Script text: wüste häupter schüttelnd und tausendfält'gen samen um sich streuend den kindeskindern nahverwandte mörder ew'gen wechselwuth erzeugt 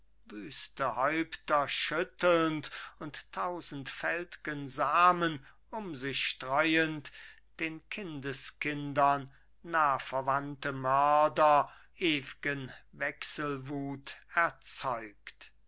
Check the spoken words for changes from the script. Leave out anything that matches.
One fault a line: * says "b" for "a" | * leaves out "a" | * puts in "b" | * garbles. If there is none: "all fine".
all fine